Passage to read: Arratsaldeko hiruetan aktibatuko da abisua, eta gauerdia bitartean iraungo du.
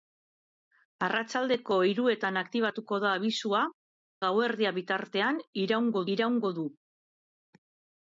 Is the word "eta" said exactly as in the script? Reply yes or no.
no